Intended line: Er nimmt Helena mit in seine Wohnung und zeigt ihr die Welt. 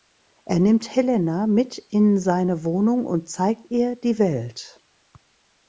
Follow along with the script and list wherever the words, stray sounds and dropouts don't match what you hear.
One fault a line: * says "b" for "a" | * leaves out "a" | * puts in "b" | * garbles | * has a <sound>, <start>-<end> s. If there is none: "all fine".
all fine